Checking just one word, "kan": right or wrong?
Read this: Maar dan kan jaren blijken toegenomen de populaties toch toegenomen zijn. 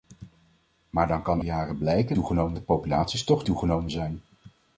right